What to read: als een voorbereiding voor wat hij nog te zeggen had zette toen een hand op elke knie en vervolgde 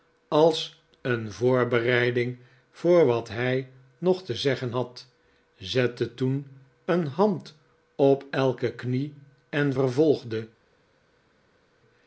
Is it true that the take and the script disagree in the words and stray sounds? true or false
false